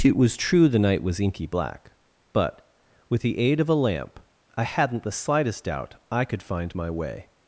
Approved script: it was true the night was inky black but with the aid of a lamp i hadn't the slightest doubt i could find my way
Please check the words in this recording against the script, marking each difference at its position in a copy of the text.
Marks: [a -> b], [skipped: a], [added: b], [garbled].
it was true the night was inky black but with the aid of a lamp i hadn't the slightest doubt i could find my way